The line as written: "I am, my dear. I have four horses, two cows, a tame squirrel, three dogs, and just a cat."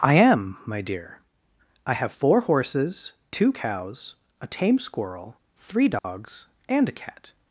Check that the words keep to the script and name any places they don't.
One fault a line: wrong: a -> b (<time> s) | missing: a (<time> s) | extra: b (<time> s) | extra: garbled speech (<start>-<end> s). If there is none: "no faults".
missing: just (6.9 s)